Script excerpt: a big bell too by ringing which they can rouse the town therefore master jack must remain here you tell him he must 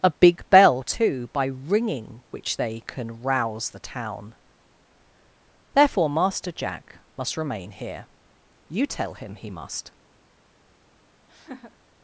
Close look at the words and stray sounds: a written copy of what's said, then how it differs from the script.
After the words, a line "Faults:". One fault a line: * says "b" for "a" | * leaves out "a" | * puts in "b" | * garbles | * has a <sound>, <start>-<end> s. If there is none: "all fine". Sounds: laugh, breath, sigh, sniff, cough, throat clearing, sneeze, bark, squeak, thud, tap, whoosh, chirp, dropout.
a big bell too by ringing which they can rouse the town therefore master jack must remain here you tell him he must
Faults:
* has a laugh, 11.3-11.8 s